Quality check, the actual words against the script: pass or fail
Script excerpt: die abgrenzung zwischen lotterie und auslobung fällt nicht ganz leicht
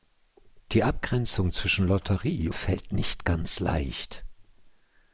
fail